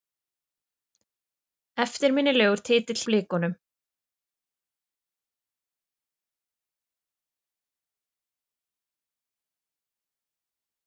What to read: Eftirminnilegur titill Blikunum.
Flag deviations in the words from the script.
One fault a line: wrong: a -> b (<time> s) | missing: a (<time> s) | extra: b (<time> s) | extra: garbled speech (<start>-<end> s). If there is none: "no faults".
no faults